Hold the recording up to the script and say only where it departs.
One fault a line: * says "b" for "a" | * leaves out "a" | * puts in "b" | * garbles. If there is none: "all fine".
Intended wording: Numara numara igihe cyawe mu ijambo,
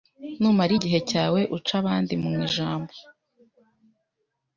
* leaves out "numara"
* puts in "uca abandi"